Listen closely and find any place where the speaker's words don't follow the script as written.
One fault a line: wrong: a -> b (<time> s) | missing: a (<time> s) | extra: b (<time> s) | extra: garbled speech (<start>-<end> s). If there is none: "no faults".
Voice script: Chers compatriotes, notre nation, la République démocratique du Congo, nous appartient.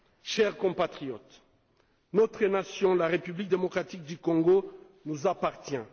no faults